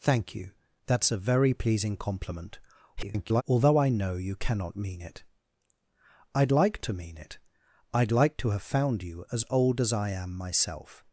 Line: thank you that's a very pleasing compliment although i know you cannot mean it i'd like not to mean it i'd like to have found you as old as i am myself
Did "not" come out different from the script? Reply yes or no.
yes